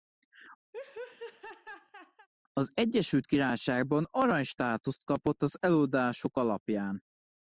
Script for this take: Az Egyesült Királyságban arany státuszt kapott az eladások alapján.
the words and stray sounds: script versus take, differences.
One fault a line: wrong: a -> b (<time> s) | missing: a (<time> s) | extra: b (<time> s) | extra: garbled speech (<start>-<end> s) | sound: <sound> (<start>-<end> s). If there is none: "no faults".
sound: laugh (0.7-2.3 s)